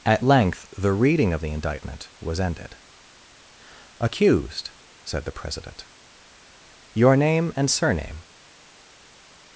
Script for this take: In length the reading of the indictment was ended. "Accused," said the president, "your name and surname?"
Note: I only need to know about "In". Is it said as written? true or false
false